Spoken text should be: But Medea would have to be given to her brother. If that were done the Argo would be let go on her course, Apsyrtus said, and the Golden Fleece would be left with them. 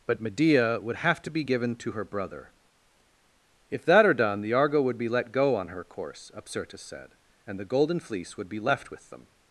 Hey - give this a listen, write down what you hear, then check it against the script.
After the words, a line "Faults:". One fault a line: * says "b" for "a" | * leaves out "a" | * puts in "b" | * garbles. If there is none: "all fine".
But Medea would have to be given to her brother. If that are done the Argo would be let go on her course, Apsyrtus said, and the Golden Fleece would be left with them.
Faults:
* says "are" for "were"